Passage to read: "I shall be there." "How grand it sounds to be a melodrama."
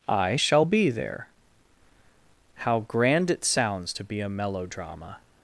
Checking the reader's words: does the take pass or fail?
pass